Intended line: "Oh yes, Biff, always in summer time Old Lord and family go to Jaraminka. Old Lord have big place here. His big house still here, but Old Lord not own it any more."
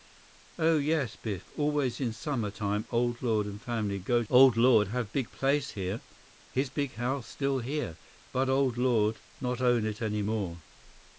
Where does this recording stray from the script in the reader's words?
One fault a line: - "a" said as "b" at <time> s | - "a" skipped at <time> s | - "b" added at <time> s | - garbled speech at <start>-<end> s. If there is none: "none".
- "to Jaraminka" skipped at 4.2 s